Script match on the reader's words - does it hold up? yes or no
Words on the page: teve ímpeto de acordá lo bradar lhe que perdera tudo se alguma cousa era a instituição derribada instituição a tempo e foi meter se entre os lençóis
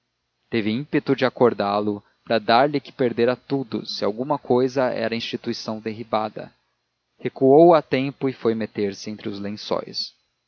no